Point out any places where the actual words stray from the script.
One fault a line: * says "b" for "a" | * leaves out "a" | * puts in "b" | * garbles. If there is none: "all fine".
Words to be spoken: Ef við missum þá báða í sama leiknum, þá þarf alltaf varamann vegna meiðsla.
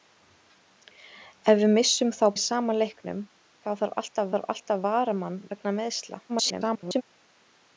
* leaves out "báða"
* puts in "þarf alltaf"
* garbles